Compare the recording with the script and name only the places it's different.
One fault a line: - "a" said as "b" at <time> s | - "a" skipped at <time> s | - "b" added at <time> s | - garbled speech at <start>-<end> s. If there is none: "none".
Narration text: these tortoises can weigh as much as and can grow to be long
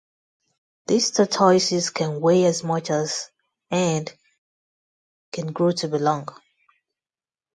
none